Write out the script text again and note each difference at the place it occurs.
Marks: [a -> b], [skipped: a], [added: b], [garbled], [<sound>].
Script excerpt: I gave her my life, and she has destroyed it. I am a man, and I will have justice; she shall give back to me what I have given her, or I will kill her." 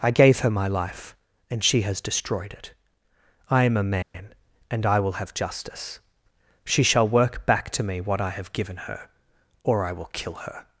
I gave her my life, and she has destroyed it. I am a man, [dropout] and I will have justice; she shall [give -> work] back to me what I have given her, or I will kill her."